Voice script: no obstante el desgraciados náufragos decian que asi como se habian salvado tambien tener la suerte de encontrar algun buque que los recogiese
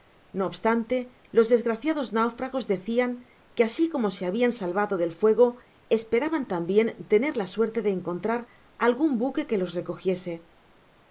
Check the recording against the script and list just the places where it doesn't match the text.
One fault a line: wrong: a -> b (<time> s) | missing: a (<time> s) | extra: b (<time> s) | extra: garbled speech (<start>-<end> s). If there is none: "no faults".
wrong: el -> los (1.4 s)
extra: del fuego esperaban (5.0 s)